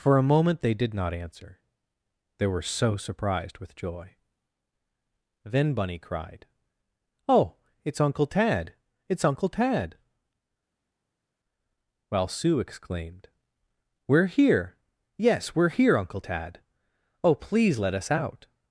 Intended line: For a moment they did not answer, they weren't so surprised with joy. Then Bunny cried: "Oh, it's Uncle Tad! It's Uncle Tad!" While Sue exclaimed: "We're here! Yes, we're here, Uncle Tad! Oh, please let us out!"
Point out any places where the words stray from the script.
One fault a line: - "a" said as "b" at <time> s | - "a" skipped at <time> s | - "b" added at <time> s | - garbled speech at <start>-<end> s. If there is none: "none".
- "weren't" said as "were" at 2.5 s